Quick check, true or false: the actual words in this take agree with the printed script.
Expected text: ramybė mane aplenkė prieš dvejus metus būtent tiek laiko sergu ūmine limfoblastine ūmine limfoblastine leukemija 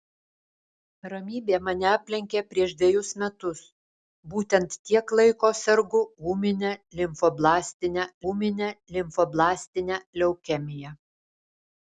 true